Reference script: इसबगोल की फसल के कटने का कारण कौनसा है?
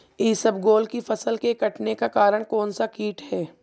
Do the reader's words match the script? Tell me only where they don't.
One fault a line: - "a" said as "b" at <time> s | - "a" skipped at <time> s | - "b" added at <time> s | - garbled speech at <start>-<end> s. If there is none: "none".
- "कीट" added at 2.9 s